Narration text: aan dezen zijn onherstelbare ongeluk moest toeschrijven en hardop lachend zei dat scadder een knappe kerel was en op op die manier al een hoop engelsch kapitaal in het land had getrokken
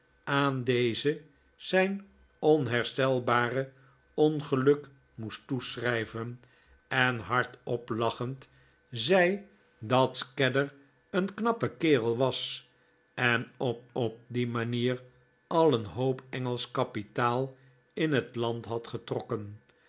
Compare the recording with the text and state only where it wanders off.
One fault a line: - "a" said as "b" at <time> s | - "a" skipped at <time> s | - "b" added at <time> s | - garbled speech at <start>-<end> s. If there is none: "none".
none